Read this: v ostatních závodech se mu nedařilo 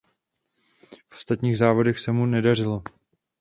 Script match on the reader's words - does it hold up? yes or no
yes